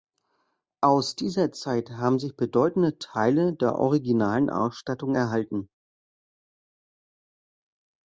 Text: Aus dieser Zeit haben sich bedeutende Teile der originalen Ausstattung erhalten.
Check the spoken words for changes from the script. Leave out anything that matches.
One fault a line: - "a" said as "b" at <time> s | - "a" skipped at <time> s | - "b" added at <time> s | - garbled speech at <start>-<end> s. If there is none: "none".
none